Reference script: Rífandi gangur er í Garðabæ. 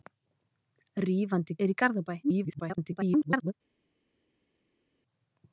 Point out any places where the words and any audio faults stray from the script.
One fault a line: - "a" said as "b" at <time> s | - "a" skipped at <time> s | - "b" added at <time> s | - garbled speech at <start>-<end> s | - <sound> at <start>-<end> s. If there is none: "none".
- "gangur" skipped at 1.6 s
- garbled speech at 2.2-3.5 s